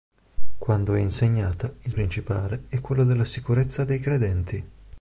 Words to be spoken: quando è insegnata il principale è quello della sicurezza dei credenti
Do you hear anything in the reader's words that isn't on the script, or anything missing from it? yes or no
no